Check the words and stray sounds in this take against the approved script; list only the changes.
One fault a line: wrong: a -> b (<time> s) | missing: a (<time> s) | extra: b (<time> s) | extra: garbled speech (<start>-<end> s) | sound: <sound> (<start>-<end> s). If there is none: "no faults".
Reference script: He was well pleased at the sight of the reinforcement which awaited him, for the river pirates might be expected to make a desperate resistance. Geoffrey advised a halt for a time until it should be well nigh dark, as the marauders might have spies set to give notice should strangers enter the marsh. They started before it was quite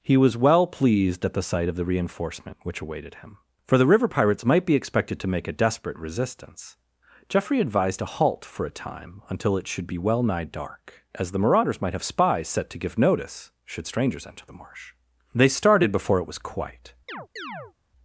sound: chirp (17.1-17.7 s)